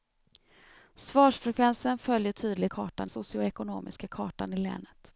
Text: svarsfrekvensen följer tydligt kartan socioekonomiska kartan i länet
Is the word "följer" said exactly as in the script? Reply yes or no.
yes